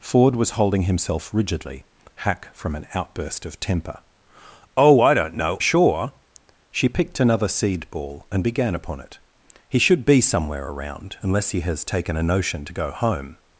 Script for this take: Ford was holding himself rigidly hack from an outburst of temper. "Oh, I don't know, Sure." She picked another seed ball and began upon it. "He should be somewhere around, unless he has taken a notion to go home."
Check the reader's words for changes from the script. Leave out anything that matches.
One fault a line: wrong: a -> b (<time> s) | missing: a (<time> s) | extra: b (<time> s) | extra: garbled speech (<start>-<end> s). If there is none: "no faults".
no faults